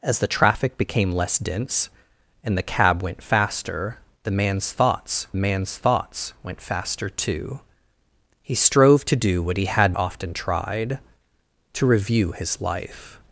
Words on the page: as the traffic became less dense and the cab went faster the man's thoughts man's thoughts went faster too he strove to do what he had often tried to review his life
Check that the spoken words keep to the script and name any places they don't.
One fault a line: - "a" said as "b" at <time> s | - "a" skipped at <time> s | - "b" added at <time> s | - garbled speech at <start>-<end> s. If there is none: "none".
none